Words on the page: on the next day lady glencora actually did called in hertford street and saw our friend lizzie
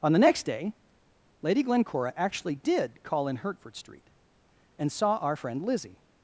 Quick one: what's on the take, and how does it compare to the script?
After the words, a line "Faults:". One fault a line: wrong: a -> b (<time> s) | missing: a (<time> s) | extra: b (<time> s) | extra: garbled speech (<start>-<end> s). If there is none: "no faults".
on the next day lady glencora actually did call in hertford street and saw our friend lizzie
Faults:
wrong: called -> call (3.0 s)